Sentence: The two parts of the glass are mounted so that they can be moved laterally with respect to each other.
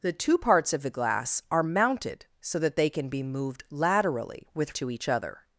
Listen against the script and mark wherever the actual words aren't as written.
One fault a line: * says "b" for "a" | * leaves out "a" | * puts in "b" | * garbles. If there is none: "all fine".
* leaves out "respect"